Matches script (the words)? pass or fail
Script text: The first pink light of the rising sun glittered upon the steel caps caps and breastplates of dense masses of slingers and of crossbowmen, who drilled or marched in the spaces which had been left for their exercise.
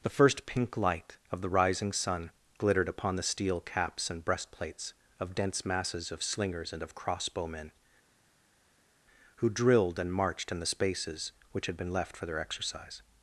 fail